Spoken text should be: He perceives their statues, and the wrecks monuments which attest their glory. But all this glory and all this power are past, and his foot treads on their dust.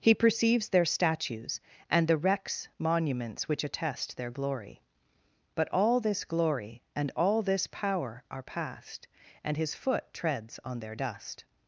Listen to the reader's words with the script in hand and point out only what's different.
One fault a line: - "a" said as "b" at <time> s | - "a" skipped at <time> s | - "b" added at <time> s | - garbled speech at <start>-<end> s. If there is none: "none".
none